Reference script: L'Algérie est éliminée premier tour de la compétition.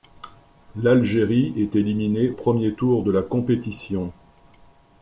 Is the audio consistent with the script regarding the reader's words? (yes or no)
yes